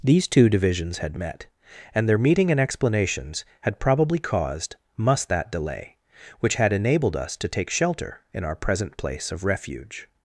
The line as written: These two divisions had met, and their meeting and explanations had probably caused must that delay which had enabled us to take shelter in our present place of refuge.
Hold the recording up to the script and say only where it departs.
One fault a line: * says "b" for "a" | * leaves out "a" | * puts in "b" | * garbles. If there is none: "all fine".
all fine